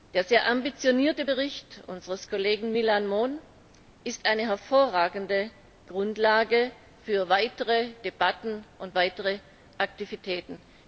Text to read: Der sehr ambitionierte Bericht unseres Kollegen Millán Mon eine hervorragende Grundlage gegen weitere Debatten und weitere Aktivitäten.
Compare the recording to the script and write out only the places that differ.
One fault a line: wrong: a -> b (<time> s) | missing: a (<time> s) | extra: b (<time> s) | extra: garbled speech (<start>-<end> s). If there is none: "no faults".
extra: ist (4.0 s)
wrong: gegen -> für (7.0 s)